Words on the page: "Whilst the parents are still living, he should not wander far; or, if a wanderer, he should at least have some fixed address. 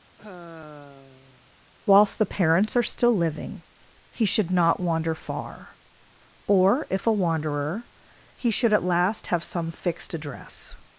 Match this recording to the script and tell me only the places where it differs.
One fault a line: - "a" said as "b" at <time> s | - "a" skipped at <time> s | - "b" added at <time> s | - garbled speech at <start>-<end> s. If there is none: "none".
- "least" said as "last" at 8.8 s